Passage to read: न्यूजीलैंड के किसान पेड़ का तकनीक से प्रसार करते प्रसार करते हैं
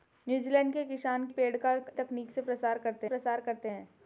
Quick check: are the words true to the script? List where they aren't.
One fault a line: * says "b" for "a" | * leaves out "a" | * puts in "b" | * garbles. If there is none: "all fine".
all fine